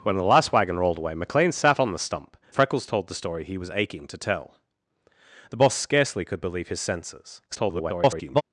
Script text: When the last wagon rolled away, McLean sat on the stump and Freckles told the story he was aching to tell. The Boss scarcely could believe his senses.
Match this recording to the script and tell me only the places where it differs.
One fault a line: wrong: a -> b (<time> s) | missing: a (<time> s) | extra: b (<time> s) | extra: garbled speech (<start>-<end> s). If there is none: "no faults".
missing: and (2.4 s)
extra: garbled speech (7.5-8.4 s)